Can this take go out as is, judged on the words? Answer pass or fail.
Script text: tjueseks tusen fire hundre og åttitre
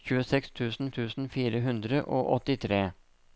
fail